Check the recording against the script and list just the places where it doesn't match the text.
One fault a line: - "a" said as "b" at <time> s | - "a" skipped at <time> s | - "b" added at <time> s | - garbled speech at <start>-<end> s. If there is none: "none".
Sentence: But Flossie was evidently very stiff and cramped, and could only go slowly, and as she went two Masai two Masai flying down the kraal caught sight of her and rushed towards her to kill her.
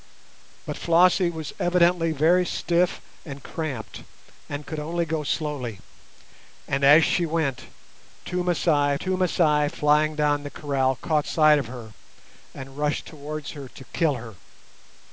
none